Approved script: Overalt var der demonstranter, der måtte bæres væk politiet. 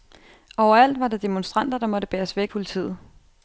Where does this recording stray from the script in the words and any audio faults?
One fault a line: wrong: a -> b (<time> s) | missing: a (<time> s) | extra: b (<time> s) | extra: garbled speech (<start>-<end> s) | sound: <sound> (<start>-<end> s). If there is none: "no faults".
no faults